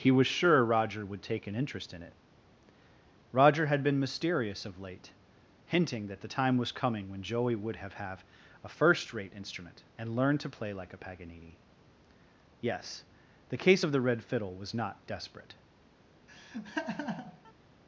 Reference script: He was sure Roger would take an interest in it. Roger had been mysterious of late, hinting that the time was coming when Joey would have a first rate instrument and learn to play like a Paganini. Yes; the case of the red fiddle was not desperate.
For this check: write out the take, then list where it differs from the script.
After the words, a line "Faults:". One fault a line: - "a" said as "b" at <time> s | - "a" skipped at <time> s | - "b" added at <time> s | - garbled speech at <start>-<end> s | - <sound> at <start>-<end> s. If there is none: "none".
He was sure Roger would take an interest in it. Roger had been mysterious of late, hinting that the time was coming when Joey would have have a first rate instrument and learn to play like a Paganini. Yes; the case of the red fiddle was not desperate.
Faults:
- "have" added at 7.9 s
- laugh at 16.3-17.5 s